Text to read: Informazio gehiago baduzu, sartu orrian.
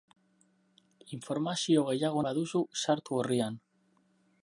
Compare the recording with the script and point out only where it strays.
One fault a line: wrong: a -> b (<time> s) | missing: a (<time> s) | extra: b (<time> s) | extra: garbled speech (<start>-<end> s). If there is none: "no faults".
no faults